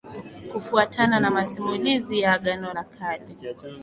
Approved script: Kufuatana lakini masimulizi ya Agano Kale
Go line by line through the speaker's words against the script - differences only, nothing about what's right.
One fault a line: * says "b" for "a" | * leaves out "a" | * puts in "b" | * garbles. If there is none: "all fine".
* says "na" for "lakini"
* puts in "la"